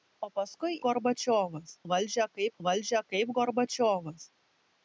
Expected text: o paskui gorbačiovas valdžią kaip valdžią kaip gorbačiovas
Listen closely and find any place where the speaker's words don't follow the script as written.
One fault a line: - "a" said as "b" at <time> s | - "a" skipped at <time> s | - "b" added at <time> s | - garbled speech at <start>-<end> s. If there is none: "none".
none